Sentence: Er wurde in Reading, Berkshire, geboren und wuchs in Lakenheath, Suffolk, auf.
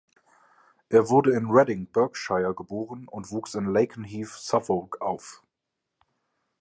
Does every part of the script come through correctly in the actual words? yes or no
yes